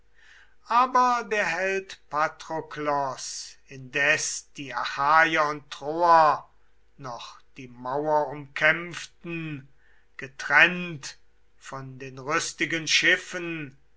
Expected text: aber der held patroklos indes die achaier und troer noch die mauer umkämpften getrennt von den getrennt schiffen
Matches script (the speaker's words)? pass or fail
fail